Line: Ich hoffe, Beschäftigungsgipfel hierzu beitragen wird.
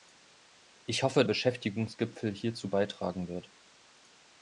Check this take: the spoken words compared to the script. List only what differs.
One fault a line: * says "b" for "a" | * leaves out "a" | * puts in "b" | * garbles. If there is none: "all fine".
all fine